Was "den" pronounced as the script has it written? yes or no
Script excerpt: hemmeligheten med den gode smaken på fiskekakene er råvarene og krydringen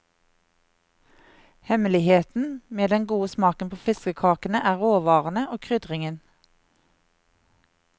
yes